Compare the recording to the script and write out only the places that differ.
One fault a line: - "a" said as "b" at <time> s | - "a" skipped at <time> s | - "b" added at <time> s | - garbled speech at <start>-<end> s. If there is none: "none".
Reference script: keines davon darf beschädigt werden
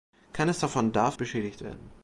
none